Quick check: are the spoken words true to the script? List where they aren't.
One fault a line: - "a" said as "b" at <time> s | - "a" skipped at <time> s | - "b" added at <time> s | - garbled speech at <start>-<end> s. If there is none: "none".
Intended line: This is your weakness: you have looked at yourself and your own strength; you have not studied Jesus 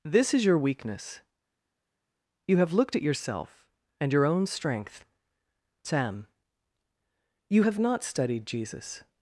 - "sam" added at 5.8 s